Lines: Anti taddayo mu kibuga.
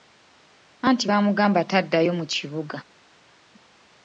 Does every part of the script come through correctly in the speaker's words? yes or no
no